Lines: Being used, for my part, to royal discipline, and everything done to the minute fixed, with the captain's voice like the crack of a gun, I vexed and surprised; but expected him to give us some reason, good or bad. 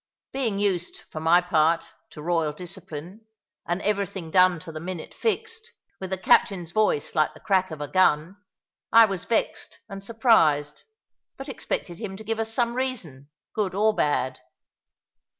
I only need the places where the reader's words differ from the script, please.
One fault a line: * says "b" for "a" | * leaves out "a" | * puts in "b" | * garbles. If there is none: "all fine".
* puts in "was"